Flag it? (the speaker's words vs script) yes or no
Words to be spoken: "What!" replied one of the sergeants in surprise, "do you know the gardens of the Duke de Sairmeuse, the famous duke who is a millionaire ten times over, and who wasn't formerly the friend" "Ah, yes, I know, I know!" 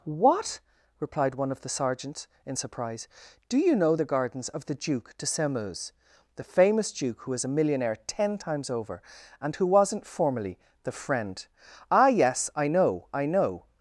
no